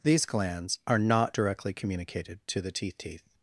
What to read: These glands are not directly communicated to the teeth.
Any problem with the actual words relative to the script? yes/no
yes